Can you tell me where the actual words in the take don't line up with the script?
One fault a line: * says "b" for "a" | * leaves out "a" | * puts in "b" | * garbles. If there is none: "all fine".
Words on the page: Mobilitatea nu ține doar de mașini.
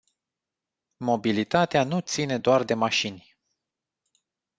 all fine